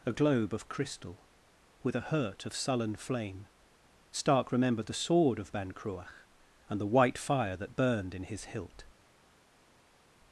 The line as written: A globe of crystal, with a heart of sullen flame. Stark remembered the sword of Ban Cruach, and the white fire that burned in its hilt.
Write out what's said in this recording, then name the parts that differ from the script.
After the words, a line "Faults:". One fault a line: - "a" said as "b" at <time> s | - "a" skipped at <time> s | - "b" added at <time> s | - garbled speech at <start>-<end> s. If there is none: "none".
A globe of crystal, with a hurt of sullen flame. Stark remembered the sword of Ban Cruach, and the white fire that burned in his hilt.
Faults:
- "heart" said as "hurt" at 2.0 s
- "its" said as "his" at 8.2 s